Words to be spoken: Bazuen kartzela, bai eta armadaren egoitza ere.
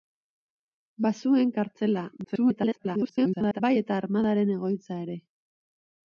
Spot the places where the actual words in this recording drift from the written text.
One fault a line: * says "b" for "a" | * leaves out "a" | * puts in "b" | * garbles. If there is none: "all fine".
* garbles